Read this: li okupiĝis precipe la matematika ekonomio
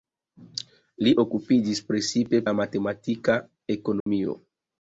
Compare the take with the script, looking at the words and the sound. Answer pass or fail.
fail